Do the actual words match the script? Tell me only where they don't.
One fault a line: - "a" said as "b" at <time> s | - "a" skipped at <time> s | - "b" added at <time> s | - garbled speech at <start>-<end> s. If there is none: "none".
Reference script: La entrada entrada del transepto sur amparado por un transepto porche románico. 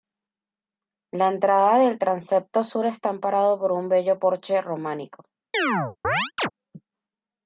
- "entrada" skipped at 1.8 s
- "está" added at 2.9 s
- "transepto" said as "bello" at 3.9 s